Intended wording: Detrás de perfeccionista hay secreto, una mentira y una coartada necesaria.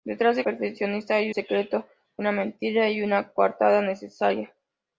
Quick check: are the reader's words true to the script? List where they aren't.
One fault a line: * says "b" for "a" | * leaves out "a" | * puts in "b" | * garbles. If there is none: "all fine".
all fine